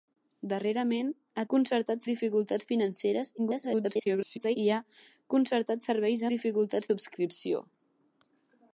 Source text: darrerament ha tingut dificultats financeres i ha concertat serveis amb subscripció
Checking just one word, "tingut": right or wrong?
wrong